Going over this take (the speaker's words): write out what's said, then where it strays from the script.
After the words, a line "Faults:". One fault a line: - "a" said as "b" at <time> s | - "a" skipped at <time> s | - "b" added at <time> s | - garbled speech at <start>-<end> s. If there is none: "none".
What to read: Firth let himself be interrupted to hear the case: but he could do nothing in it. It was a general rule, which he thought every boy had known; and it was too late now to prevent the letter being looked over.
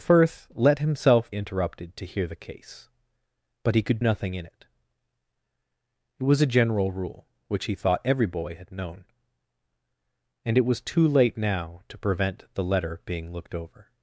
Firth let himself interrupted to hear the case: but he could nothing in it. It was a general rule, which he thought every boy had known; and it was too late now to prevent the letter being looked over.
Faults:
- "be" skipped at 1.3 s
- "do" skipped at 4.0 s